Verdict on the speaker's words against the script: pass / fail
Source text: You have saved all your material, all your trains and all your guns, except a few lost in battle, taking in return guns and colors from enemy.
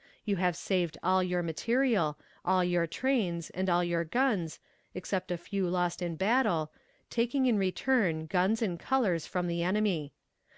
fail